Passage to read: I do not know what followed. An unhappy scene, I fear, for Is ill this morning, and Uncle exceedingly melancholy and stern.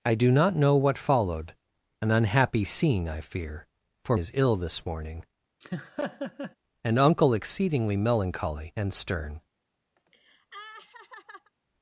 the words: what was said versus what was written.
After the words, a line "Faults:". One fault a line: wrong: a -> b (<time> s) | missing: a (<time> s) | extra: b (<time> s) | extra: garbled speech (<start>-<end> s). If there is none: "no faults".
I do not know what followed. An unhappy scene, I fear, for Is ill this morning, and Uncle exceedingly melancholy and stern.
Faults:
no faults